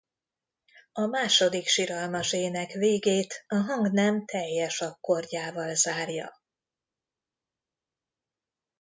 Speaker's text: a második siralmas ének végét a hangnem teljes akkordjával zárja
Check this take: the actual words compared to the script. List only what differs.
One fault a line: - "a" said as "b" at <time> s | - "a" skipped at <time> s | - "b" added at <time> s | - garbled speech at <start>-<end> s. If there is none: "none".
none